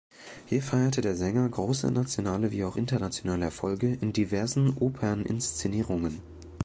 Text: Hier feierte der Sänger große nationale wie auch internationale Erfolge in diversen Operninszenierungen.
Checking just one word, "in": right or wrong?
right